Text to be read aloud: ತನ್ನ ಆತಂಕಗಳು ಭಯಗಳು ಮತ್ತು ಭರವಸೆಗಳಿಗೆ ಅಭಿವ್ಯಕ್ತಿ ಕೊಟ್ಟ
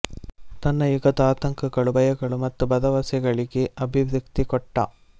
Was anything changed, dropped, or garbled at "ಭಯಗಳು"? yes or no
no